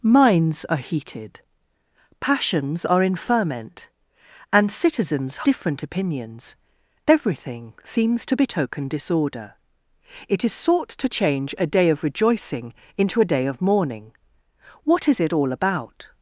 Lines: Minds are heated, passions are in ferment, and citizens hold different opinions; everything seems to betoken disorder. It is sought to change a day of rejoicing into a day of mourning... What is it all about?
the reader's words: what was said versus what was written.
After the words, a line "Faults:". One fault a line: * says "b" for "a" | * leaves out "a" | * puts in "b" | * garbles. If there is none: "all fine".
Minds are heated, passions are in ferment, and citizens different opinions; everything seems to betoken disorder. It is sought to change a day of rejoicing into a day of mourning... What is it all about?
Faults:
* leaves out "hold"